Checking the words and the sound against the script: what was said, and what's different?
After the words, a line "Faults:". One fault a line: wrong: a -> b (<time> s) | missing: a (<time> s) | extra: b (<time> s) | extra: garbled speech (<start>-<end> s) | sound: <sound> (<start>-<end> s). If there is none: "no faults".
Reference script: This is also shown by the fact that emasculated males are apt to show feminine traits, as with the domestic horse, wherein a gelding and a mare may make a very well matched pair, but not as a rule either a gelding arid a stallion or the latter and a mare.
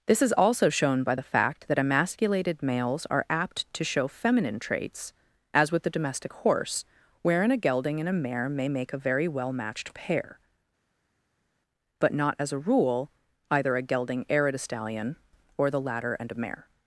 This is also shown by the fact that emasculated males are apt to show feminine traits, as with the domestic horse, wherein a gelding and a mare may make a very well matched pair, but not as a rule either a gelding arid a stallion or the latter and a mare.
Faults:
no faults